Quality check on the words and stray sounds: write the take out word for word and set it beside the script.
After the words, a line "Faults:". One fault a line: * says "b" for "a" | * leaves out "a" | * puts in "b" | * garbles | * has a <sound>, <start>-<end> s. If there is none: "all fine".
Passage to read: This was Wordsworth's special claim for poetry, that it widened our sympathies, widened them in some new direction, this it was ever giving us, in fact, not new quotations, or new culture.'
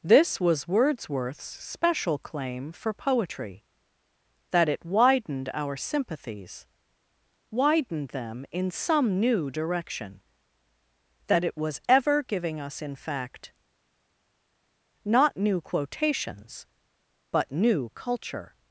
This was Wordsworth's special claim for poetry, that it widened our sympathies, widened them in some new direction, that it was ever giving us, in fact, not new quotations, but new culture.'
Faults:
* says "that" for "this"
* says "but" for "or"